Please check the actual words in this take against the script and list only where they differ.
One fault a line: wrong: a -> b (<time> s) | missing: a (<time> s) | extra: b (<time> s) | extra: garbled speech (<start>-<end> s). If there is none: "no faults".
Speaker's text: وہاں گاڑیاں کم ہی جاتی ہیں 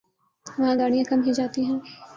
no faults